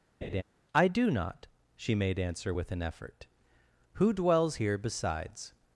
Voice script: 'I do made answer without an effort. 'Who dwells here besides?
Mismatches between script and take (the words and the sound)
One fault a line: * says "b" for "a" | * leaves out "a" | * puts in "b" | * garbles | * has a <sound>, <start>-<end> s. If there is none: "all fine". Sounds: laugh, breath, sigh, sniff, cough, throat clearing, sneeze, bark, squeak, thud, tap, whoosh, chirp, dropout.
* has a laugh, 0.2-0.4 s
* puts in "not she"
* says "with" for "without"